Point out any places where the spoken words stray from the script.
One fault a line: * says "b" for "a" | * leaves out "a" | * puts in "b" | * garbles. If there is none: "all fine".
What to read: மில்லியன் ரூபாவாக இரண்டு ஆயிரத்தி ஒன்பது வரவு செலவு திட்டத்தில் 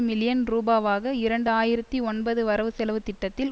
all fine